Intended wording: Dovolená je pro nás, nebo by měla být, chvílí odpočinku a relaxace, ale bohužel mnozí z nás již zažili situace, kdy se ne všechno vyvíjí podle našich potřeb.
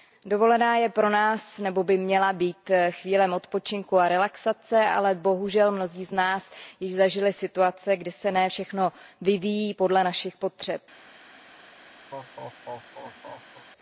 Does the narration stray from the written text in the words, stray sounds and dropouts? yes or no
yes